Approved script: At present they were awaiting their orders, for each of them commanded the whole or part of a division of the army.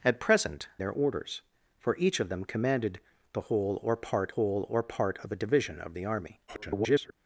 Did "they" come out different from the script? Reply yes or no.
yes